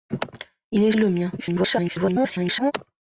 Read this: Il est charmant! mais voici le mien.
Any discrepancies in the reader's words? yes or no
yes